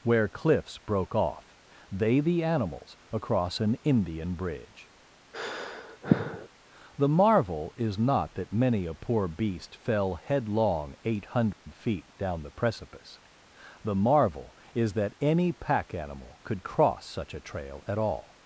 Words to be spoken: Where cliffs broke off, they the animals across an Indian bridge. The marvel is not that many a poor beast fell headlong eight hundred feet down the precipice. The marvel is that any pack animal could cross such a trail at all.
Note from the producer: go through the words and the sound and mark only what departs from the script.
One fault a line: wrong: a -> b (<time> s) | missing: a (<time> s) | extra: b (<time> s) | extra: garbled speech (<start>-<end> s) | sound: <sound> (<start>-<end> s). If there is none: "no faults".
sound: sigh (5.3-6.5 s)
sound: dropout (11.5-11.7 s)